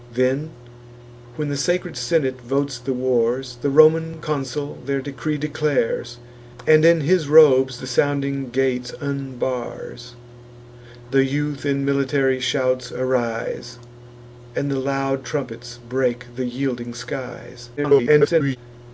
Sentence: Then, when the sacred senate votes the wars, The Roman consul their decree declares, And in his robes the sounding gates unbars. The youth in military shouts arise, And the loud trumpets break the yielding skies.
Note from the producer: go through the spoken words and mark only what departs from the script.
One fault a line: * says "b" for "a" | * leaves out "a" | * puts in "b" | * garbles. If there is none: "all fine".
* garbles